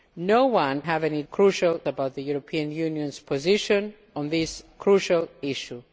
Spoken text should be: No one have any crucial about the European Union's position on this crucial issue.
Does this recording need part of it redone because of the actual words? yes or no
no